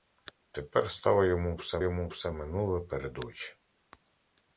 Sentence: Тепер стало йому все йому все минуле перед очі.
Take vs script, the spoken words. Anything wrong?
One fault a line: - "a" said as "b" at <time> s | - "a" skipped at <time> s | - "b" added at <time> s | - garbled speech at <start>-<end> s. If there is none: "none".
none